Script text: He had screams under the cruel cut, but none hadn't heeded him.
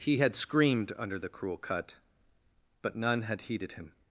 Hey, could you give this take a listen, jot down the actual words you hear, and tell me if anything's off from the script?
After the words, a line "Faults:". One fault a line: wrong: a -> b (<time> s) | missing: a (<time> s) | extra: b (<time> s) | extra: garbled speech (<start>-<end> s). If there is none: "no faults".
He had screamed under the cruel cut, but none had heeded him.
Faults:
wrong: screams -> screamed (0.3 s)
wrong: hadn't -> had (3.2 s)